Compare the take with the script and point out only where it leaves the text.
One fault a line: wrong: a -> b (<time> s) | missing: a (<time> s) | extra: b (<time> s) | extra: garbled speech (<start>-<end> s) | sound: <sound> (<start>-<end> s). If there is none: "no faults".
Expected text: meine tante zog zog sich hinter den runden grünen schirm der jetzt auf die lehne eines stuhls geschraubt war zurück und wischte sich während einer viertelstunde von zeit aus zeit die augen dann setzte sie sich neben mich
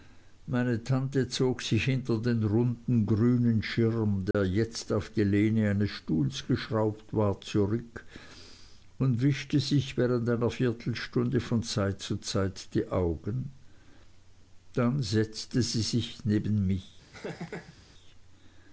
missing: zog (1.6 s)
sound: dropout (4.3-4.3 s)
wrong: aus -> zu (12.0 s)
sound: laugh (17.1-17.8 s)